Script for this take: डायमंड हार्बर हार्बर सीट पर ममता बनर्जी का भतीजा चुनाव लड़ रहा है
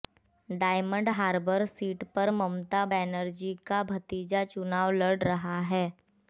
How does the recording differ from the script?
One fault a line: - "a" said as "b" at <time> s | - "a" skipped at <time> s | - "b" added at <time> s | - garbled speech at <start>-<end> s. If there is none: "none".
- "हार्बर" skipped at 1.6 s